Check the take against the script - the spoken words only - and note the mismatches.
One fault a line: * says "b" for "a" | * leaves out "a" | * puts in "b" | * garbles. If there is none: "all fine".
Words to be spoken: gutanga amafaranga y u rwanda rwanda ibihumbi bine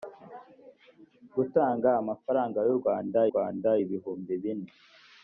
all fine